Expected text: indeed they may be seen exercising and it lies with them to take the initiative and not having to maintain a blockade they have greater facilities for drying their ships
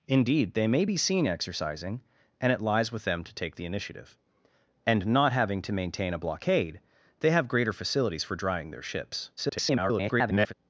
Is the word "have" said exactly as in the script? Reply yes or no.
yes